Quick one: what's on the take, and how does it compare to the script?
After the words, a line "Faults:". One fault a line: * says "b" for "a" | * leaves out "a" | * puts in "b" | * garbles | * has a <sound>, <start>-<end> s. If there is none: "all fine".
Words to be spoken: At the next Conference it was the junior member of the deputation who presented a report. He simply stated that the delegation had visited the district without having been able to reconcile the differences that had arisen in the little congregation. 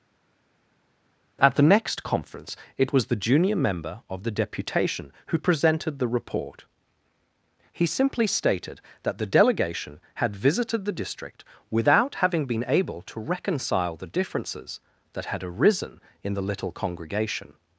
At the next Conference it was the junior member of the deputation who presented the report. He simply stated that the delegation had visited the district without having been able to reconcile the differences that had arisen in the little congregation.
Faults:
* says "the" for "a"